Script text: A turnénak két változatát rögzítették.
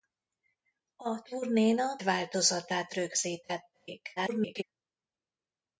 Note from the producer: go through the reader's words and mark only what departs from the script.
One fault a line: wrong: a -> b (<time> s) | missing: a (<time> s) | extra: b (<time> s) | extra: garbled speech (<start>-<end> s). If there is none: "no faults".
missing: két (2.0 s)
extra: garbled speech (4.2-4.6 s)